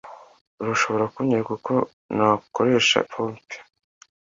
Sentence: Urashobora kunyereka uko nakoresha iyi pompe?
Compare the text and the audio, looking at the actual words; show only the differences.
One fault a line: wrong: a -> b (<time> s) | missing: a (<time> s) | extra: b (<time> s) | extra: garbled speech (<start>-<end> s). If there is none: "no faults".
missing: iyi (3.0 s)